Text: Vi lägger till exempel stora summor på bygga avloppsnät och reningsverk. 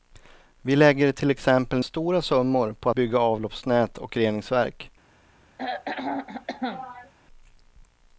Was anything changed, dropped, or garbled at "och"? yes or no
no